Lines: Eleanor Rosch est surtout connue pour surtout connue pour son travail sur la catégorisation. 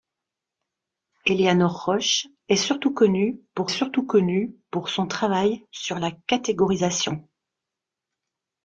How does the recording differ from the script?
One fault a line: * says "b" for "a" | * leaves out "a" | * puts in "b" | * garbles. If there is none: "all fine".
all fine